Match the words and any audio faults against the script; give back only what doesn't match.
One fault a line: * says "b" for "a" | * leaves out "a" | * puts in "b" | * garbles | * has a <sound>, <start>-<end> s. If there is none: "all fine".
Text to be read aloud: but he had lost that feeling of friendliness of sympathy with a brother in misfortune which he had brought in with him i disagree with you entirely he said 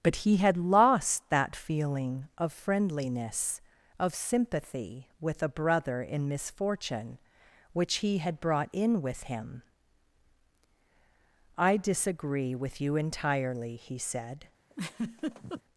* has a laugh, 14.7-15.6 s